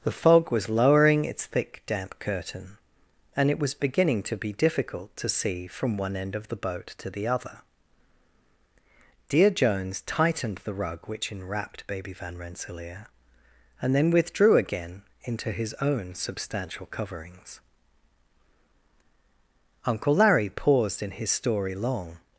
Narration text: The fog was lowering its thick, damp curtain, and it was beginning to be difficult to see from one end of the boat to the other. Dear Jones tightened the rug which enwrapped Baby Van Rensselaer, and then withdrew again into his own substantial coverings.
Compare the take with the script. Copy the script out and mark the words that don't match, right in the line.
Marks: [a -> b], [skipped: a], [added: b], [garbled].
The fog was lowering its thick, damp curtain, and it was beginning to be difficult to see from one end of the boat to the other. Dear Jones tightened the rug which enwrapped Baby Van Rensselaer, and then withdrew again into his own substantial coverings. [added: Uncle Larry paused in his story long]